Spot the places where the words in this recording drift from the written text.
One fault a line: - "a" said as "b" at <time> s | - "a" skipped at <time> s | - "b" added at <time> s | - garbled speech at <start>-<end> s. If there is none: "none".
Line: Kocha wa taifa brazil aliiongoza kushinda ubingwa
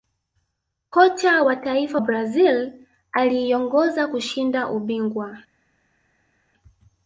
none